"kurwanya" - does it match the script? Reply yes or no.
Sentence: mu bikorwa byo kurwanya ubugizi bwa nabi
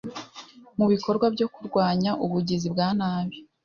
yes